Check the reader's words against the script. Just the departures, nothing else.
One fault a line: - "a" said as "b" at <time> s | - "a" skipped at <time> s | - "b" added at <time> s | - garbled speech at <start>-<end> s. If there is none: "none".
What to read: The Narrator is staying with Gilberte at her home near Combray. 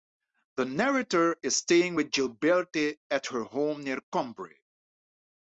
none